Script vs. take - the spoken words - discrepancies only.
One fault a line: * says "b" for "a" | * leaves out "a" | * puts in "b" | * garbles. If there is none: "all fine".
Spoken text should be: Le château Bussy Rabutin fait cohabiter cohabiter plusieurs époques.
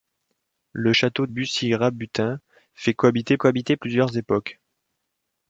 all fine